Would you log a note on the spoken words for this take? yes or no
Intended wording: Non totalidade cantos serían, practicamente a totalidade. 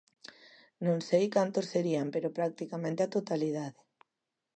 yes